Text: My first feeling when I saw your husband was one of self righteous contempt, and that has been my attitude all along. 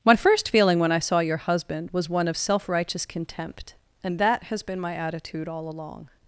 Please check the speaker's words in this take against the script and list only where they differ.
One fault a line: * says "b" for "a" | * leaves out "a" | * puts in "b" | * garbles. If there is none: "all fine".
all fine